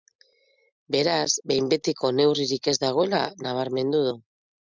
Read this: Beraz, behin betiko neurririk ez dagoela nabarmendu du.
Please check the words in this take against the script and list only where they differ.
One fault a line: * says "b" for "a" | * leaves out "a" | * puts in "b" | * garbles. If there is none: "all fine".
all fine